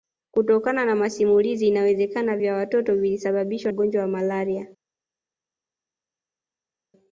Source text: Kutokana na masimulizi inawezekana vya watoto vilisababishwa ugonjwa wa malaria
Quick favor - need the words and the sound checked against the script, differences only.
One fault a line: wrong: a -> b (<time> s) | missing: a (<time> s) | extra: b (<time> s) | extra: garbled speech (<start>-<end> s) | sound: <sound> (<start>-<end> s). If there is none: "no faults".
no faults